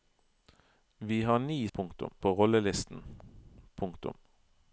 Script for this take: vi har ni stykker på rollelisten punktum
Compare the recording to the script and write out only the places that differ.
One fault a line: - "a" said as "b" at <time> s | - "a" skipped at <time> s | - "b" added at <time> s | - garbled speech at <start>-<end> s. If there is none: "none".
- "stykker" said as "punktum" at 1.7 s